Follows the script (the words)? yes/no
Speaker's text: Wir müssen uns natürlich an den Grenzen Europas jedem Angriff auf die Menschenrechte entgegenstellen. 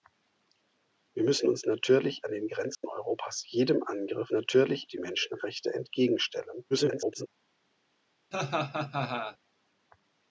no